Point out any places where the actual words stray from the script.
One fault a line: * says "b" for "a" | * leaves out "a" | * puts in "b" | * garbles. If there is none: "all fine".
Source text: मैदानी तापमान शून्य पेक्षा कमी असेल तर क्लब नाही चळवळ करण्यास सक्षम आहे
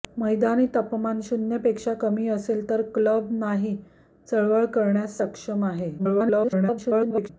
* garbles